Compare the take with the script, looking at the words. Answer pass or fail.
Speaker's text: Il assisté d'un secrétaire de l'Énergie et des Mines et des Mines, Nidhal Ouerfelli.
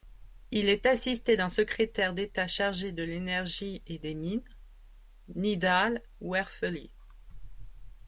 fail